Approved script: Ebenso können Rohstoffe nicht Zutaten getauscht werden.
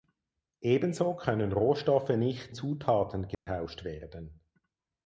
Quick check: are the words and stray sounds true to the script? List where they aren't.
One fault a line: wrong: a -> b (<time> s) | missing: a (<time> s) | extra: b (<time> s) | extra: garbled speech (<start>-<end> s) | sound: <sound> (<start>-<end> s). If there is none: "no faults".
sound: dropout (3.3-3.5 s)